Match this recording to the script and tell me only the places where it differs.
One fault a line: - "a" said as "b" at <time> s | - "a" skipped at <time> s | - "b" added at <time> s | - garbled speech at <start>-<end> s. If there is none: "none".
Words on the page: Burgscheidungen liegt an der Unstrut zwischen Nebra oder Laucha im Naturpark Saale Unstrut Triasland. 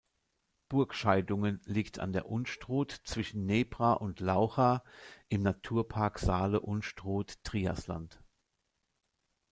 - "oder" said as "und" at 3.9 s